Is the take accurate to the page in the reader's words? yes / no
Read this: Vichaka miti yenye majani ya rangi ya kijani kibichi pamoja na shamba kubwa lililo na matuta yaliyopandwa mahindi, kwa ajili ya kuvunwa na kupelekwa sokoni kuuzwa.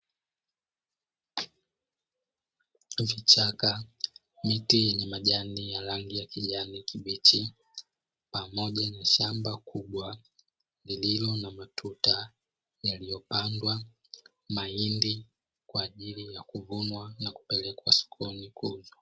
yes